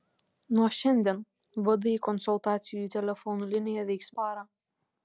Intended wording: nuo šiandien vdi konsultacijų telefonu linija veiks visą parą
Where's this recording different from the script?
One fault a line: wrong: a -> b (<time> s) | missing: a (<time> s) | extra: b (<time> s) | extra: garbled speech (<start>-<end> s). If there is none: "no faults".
missing: visą (4.1 s)